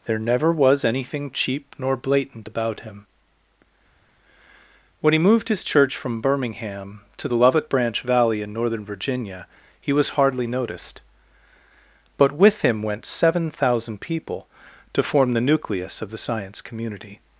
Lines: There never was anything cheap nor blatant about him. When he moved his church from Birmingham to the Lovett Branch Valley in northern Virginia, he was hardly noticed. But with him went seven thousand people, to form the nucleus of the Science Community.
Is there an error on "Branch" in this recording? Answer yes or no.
no